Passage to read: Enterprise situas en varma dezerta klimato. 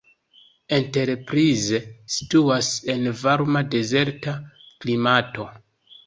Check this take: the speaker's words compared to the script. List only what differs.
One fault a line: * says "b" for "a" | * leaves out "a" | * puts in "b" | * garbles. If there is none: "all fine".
all fine